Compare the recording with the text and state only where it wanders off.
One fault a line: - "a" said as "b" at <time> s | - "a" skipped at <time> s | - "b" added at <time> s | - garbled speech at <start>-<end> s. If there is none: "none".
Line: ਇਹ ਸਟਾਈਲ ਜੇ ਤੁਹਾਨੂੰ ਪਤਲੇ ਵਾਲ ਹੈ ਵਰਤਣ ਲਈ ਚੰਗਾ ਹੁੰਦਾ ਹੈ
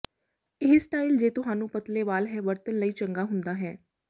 none